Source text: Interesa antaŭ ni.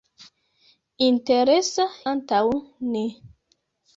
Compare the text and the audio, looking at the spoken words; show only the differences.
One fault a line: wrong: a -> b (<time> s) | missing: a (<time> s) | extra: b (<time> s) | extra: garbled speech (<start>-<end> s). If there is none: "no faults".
no faults